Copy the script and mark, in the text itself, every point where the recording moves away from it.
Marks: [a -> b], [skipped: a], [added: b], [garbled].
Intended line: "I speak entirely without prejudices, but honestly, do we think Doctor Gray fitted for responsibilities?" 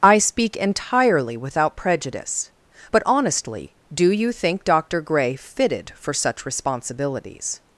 "I speak entirely without [prejudices, -> prejudice] but honestly, do [we -> you] think Doctor Gray fitted for [added: such] responsibilities?"